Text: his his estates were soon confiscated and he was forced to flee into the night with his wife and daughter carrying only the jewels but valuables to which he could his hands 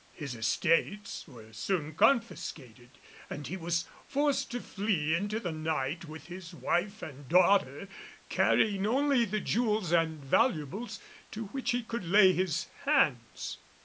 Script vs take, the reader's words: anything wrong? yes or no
yes